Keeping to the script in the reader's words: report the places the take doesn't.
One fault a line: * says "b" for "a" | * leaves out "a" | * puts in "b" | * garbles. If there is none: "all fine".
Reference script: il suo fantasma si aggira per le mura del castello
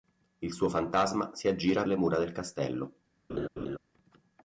* leaves out "per"